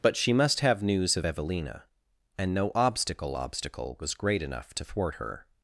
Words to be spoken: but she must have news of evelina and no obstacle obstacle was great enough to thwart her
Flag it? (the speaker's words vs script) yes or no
no